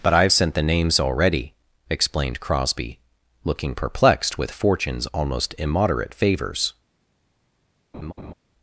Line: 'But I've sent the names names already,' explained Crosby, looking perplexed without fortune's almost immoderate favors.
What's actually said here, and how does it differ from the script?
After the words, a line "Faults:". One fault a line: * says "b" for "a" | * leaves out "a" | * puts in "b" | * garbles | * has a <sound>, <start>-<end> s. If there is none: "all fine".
'But I've sent the names already,' explained Crosby, looking perplexed with fortune's almost immoderate favors.
Faults:
* leaves out "names"
* says "with" for "without"
* has a laugh, 7.9-8.3 s